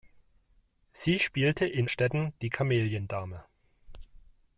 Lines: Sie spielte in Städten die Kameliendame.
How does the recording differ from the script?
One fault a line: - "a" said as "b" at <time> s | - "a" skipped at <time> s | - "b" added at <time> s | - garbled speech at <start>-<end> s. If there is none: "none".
none